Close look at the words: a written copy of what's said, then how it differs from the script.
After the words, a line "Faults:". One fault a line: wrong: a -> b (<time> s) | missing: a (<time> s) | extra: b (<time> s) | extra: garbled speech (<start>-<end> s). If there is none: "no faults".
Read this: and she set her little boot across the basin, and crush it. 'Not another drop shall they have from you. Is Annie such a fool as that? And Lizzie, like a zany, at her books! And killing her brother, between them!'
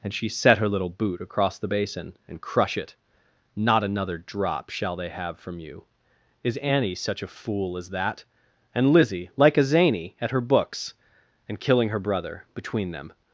and she set her little boot across the basin, and crush it. 'Not another drop shall they have from you. Is Annie such a fool as that? And Lizzie, like a zany, at her books! And killing her brother, between them!'
Faults:
no faults